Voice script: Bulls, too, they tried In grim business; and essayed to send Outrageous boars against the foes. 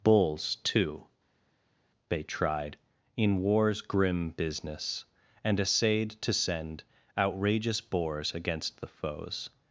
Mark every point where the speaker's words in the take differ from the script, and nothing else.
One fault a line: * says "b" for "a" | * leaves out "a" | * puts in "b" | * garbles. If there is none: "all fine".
* puts in "war's"